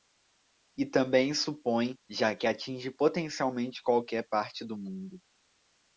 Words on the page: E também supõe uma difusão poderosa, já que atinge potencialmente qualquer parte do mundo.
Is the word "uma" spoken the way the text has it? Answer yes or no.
no